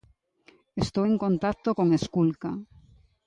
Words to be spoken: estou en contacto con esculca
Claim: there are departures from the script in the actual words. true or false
false